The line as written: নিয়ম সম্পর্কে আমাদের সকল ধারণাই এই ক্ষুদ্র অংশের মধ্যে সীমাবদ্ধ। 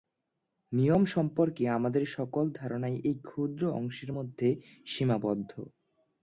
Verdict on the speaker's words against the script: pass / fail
pass